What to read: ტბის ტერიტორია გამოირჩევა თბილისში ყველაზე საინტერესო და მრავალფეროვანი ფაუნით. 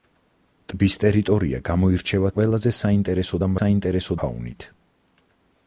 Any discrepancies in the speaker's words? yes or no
yes